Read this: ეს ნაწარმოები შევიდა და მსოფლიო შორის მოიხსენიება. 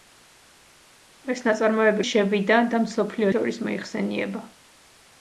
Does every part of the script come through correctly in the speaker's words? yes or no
yes